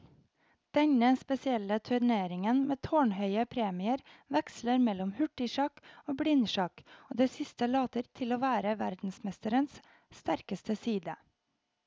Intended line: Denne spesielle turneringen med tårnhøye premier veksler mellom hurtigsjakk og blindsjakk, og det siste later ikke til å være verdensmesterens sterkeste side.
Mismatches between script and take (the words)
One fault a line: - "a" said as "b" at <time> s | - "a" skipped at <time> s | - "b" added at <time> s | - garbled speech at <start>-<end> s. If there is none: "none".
- "ikke" skipped at 8.0 s